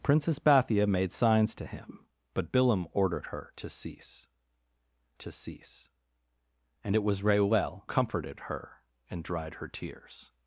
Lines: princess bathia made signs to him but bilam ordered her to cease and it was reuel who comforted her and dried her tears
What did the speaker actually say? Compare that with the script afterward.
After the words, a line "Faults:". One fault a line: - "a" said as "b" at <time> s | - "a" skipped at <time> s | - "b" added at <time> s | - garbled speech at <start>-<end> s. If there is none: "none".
princess bathia made signs to him but bilam ordered her to cease to cease and it was reuel comforted her and dried her tears
Faults:
- "to cease" added at 5.2 s
- "who" skipped at 7.9 s